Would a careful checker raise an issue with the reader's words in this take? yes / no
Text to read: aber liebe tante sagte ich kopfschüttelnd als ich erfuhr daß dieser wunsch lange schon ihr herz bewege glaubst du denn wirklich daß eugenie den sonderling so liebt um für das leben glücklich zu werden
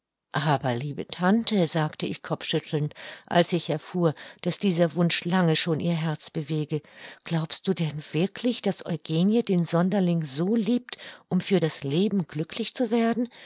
no